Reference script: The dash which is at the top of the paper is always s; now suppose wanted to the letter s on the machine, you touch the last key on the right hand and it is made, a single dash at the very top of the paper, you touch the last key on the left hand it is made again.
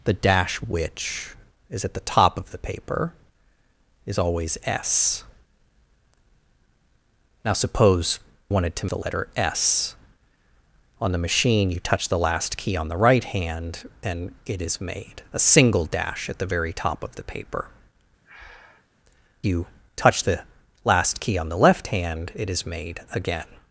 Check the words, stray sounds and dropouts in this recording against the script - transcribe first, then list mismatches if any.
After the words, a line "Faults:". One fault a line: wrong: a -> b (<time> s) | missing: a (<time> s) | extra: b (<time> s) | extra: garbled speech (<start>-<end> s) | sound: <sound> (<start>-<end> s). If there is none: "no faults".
The dash which is at the top of the paper is always s; now suppose wanted to the letter s on the machine, you touch the last key on the right hand and it is made, a single dash at the very top of the paper, you touch the last key on the left hand it is made again.
Faults:
sound: breath (18.2-18.9 s)